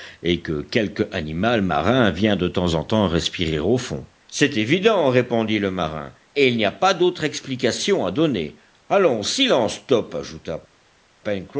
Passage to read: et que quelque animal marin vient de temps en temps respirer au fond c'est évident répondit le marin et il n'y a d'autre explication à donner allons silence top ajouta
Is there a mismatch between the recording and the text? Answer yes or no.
yes